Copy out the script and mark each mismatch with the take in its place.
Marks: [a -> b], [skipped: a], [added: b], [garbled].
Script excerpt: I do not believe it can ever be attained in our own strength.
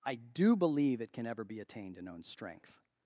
I do [skipped: not] believe it can ever be attained in [skipped: our] own strength.